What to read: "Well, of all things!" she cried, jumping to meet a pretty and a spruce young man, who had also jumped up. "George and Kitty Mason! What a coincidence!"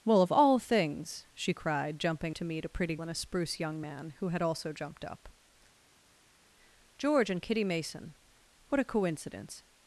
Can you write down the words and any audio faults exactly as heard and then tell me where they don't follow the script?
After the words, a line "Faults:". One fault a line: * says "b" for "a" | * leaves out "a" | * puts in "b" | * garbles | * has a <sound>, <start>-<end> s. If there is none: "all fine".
"Well, of all things!" she cried, jumping to meet a pretty and a spruce young man, who had also jumped up. "George and Kitty Mason! What a coincidence!"
Faults:
all fine